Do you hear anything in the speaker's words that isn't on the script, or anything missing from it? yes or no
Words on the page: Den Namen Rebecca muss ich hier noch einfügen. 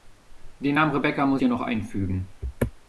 yes